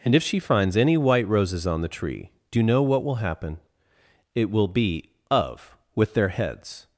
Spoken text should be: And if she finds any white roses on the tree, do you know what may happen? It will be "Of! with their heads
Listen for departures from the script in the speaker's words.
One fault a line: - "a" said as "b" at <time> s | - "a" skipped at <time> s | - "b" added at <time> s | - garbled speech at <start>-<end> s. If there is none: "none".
- "may" said as "will" at 3.0 s